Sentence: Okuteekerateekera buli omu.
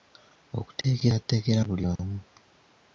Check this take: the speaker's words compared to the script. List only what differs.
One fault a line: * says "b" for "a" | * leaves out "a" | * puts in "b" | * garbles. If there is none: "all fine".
all fine